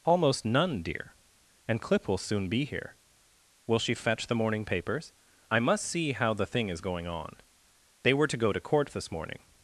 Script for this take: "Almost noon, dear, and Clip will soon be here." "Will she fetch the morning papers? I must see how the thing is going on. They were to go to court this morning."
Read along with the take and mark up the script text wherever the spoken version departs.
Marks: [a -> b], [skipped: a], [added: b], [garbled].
"Almost [noon, -> none] dear, and Clip will soon be here." "Will she fetch the morning papers? I must see how the thing is going on. They were to go to court this morning."